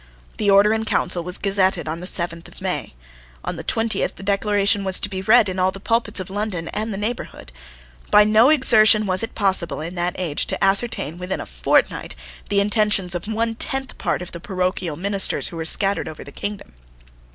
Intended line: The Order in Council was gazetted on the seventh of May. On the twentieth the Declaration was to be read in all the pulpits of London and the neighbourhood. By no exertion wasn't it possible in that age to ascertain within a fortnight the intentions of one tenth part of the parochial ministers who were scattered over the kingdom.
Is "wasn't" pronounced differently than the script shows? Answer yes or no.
yes